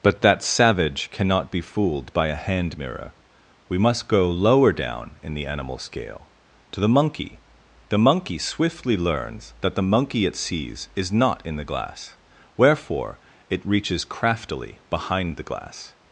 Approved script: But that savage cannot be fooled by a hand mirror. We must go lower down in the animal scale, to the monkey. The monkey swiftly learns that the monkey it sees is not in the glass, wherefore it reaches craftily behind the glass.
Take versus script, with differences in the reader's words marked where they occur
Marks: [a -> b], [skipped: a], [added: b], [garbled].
But that savage cannot be fooled by a hand mirror. We must go lower down in the animal scale, to the monkey. The monkey swiftly learns that the monkey it sees is not in the glass, wherefore it reaches craftily behind the glass.